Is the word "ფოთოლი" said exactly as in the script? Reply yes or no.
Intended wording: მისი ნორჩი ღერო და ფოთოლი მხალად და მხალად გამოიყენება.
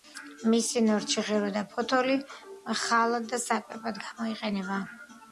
yes